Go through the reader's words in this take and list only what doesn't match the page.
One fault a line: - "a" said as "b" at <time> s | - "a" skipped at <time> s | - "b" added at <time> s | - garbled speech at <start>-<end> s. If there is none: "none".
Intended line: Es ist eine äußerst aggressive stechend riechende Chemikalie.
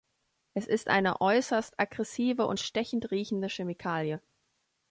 - "und" added at 2.5 s